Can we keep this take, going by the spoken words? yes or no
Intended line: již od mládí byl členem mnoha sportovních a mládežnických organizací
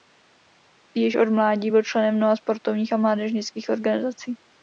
yes